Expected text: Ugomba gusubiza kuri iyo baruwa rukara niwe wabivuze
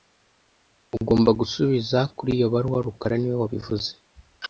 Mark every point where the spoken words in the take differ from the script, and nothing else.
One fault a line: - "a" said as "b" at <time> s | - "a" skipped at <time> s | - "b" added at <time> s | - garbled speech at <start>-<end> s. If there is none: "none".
none